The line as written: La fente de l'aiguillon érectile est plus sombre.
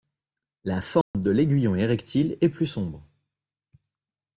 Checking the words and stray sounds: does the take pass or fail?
fail